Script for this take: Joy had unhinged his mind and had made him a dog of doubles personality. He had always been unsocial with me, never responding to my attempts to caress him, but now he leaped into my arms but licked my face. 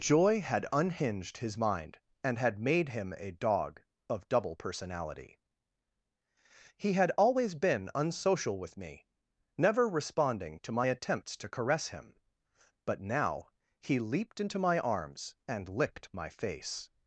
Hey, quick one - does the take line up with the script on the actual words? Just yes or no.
no